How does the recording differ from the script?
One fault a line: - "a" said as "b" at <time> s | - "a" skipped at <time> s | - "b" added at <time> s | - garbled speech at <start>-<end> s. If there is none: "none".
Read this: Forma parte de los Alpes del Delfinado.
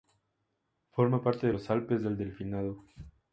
none